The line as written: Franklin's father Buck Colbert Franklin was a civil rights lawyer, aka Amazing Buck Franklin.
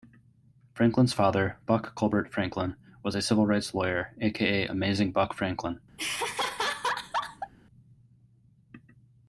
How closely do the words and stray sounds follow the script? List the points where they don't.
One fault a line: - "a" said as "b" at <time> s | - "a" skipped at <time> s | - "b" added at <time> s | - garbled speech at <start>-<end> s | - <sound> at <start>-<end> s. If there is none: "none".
- laugh at 6.0-7.5 s